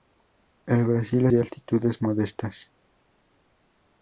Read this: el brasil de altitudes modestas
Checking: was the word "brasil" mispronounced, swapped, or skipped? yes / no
no